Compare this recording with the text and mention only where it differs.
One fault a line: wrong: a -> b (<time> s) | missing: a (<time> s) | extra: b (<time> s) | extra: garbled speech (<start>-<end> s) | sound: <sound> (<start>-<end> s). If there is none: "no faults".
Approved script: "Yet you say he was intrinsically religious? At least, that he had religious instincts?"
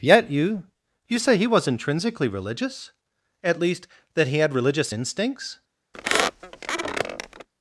extra: you (1.1 s)
sound: squeak (5.9-7.5 s)